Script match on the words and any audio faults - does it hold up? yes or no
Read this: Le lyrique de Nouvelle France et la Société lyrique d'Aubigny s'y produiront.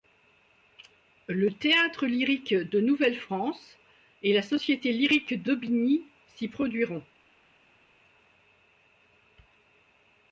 no